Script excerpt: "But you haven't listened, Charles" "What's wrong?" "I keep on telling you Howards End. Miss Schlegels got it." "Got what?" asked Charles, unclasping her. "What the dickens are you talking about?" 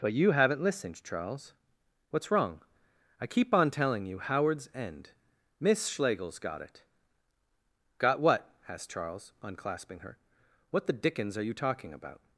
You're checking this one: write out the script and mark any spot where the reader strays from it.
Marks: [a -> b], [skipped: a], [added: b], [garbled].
"But you haven't listened, Charles" "What's wrong?" "I keep on telling you Howards End. Miss Schlegels got it." "Got what?" asked Charles, unclasping her. "What the dickens are you talking about?"